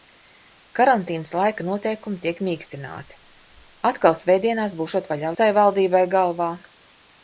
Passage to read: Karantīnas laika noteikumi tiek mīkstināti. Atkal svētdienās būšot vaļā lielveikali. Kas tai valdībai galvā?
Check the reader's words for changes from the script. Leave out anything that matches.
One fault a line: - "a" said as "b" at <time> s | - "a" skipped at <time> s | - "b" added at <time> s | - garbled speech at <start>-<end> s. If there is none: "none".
- "lielveikali Kas" skipped at 5.3 s